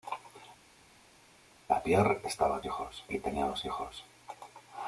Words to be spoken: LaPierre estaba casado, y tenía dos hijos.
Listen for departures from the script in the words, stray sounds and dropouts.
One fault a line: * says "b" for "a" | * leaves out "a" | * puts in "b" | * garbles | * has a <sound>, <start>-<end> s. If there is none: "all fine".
* says "hijos" for "casado"